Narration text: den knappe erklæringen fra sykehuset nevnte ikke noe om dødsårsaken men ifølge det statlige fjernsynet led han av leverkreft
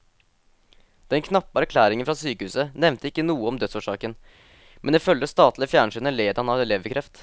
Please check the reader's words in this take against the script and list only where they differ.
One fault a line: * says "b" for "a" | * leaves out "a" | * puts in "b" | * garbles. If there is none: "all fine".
all fine